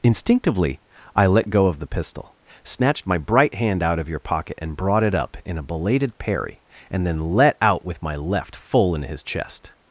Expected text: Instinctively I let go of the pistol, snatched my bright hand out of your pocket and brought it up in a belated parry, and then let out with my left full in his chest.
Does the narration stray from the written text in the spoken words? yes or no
no